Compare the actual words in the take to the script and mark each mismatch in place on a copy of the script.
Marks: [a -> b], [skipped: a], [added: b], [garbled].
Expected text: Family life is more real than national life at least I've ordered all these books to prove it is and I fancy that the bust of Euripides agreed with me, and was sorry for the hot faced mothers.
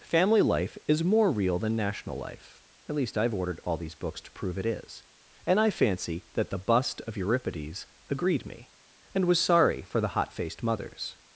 Family life is more real than national life at least I've ordered all these books to prove it is and I fancy that the bust of Euripides agreed [skipped: with] me, and was sorry for the hot faced mothers.